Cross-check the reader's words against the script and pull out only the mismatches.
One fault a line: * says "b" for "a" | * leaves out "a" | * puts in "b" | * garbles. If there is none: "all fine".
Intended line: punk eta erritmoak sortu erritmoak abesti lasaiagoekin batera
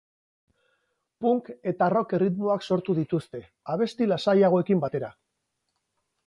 * puts in "rock"
* says "dituzte" for "erritmoak"